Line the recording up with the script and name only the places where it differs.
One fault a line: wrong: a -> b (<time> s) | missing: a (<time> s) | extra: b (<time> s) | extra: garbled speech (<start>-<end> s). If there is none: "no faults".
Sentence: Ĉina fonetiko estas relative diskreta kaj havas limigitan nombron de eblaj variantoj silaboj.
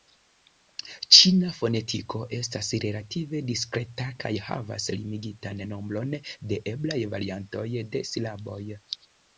extra: de (8.0 s)